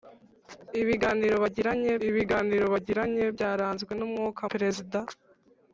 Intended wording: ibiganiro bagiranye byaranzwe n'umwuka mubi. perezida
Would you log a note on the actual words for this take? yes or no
yes